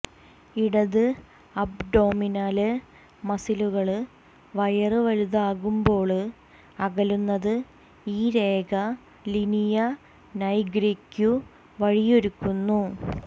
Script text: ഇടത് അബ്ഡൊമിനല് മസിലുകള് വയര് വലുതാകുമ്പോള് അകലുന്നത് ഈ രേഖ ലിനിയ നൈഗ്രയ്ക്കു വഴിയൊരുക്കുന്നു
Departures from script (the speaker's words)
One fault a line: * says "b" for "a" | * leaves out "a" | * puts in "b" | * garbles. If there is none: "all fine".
all fine